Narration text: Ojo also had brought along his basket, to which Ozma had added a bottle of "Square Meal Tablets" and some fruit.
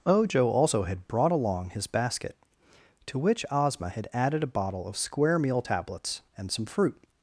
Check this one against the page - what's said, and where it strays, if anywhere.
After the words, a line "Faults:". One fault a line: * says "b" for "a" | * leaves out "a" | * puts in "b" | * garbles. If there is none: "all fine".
Ojo also had brought along his basket, to which Ozma had added a bottle of "Square Meal Tablets" and some fruit.
Faults:
all fine